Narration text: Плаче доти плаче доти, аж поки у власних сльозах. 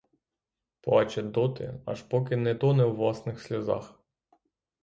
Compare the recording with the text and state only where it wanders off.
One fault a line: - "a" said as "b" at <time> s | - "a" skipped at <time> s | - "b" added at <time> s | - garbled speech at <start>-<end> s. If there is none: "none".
- "плаче доти аж поки" said as "аж поки не тоне" at 1.9 s